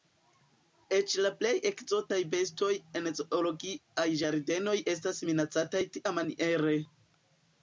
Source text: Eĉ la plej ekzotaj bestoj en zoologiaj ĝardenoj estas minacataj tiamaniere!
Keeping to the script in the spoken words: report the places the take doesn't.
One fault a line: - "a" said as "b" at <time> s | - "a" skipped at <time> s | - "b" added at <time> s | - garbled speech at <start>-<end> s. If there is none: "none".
none